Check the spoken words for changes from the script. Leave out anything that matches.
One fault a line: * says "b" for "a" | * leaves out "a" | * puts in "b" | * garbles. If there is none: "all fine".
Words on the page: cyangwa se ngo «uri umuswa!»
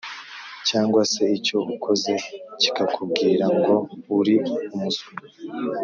* puts in "icyo ukoze kikakubwira"